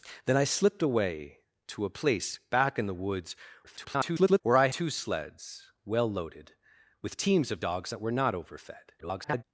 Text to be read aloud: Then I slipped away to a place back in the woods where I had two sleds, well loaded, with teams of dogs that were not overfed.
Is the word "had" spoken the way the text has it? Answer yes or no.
no